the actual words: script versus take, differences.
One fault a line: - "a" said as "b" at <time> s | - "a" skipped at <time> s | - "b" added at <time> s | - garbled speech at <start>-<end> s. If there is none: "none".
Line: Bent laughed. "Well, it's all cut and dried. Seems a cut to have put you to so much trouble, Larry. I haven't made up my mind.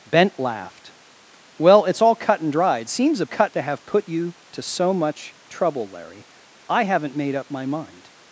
none